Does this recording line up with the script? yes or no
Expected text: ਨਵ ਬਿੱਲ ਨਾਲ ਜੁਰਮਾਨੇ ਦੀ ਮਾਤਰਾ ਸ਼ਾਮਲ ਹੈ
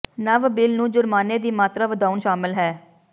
no